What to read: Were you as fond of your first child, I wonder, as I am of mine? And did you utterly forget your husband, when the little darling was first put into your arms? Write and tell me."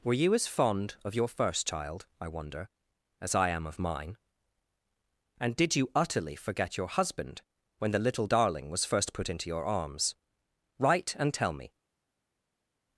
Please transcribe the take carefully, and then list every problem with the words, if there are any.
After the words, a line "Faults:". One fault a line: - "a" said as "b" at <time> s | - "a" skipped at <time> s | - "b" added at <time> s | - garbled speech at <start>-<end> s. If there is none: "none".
Were you as fond of your first child, I wonder, as I am of mine? And did you utterly forget your husband, when the little darling was first put into your arms? Write and tell me."
Faults:
none